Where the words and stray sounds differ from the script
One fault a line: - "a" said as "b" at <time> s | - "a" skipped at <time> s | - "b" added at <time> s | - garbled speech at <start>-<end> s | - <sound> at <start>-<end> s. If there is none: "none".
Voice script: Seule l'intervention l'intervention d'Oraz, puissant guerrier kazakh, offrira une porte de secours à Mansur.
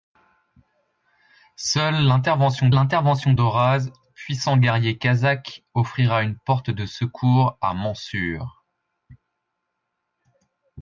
none